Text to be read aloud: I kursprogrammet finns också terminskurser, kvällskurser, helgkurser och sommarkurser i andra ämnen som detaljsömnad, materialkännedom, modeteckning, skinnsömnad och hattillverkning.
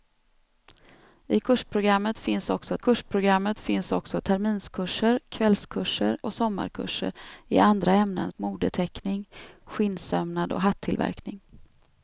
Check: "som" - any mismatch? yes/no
yes